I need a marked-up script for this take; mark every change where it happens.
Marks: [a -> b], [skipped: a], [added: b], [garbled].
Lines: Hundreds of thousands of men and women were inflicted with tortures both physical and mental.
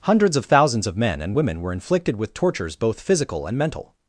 Hundreds of thousands of men and women were inflicted with tortures both physical and mental.